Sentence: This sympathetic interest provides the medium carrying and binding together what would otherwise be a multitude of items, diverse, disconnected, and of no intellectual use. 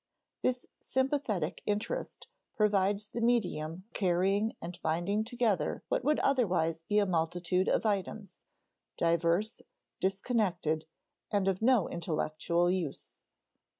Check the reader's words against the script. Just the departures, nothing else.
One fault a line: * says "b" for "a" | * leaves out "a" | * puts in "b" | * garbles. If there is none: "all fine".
all fine